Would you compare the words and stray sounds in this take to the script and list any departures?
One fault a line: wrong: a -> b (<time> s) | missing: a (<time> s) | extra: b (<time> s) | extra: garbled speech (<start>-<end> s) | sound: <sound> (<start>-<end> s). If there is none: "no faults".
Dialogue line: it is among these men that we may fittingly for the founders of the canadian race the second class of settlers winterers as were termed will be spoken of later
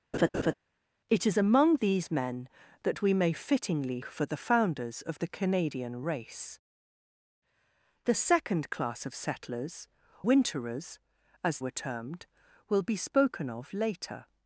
sound: laugh (0.1-0.5 s)